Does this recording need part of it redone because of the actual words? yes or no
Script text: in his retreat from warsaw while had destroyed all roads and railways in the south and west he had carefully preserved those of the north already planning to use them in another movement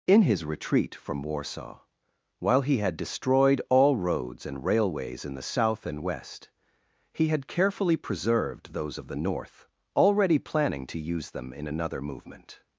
yes